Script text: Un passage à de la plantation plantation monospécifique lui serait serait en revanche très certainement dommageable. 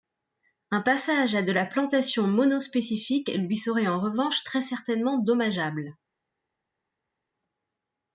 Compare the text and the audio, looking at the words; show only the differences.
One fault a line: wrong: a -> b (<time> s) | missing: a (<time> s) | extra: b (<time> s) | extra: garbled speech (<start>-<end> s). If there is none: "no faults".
missing: plantation (2.3 s)
missing: serait (3.9 s)